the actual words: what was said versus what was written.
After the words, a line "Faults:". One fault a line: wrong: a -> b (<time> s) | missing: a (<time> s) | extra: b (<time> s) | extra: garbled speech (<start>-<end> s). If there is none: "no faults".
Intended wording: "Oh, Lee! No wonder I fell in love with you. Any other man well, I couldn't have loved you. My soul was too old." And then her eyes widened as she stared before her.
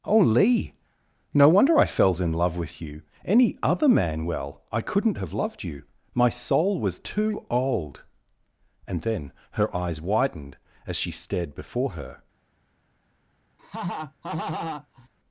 "Oh, Lee! No wonder I fells in love with you. Any other man well, I couldn't have loved you. My soul was too old." And then her eyes widened as she stared before her.
Faults:
wrong: fell -> fells (1.9 s)